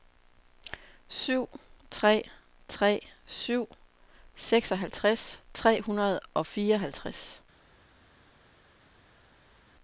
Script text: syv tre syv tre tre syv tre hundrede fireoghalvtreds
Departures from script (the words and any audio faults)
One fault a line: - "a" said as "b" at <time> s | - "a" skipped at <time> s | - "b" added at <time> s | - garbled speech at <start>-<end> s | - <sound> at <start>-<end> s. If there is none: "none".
- "syv" skipped at 2.2 s
- "tre syv" said as "syv seksoghalvtreds" at 3.2 s
- "og" added at 6.3 s